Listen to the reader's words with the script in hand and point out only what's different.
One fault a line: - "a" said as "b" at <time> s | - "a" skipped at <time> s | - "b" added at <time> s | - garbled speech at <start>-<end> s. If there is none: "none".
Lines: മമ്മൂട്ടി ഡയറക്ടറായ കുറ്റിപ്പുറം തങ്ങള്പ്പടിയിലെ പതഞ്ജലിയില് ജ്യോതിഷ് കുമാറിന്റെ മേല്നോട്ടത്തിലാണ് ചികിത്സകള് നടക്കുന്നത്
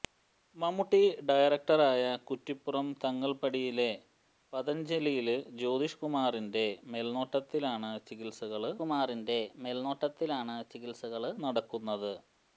- "കുമാറിന്റെ മേല്നോട്ടത്തിലാണ് ചികിത്സകള്" added at 8.8 s